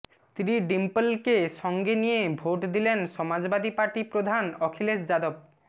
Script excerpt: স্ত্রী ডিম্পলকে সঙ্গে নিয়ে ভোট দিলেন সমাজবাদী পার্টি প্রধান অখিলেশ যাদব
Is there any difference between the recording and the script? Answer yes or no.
no